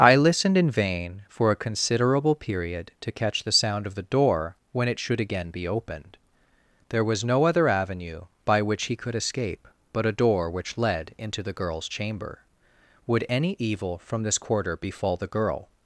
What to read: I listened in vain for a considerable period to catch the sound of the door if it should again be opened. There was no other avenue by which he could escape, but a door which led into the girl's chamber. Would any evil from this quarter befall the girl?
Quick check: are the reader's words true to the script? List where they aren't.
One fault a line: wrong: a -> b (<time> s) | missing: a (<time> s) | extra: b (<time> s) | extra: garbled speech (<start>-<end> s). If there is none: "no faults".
wrong: if -> when (4.7 s)